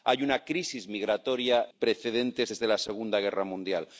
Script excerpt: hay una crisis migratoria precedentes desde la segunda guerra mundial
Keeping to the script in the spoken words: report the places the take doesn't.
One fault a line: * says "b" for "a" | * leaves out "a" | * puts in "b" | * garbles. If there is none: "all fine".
all fine